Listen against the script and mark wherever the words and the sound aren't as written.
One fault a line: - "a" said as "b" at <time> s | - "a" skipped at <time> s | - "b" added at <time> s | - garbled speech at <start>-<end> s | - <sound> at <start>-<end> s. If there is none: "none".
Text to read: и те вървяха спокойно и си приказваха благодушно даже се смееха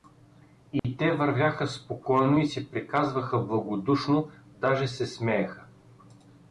- dropout at 0.8-0.8 s